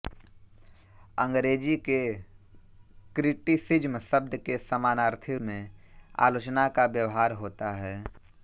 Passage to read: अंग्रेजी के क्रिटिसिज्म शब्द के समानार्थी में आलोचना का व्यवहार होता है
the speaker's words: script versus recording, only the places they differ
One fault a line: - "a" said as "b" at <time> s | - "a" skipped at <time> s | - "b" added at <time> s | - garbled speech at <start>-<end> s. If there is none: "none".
none